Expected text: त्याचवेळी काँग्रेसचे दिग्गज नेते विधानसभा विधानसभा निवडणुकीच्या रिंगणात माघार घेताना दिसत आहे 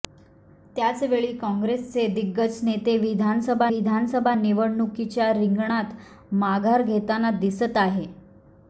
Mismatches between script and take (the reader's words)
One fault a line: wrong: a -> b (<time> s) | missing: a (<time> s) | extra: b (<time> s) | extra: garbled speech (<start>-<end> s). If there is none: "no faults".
no faults